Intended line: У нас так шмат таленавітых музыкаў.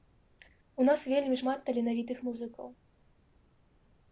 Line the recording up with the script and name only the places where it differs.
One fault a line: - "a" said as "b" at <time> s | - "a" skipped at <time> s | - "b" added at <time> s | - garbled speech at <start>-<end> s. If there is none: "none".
- "так" said as "вельмі" at 1.1 s